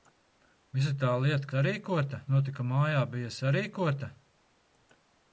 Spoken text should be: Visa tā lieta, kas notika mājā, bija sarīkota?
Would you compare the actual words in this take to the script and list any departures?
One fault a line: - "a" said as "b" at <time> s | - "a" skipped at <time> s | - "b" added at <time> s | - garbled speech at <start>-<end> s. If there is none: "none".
- "kas" said as "sarīkota" at 1.5 s